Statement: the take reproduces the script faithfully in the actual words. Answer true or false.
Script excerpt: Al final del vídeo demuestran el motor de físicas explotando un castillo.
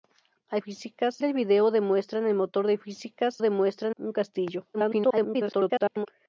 false